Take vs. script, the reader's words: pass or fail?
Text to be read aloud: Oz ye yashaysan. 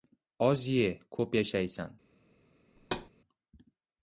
fail